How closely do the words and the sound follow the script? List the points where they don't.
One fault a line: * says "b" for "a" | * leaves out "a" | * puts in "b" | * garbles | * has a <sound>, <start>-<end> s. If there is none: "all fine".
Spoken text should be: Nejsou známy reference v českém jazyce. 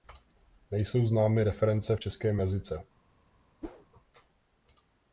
* has a whoosh, 3.6-3.9 s